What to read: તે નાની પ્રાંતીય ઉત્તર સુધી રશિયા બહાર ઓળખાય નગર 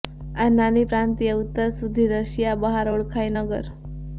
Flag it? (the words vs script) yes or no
yes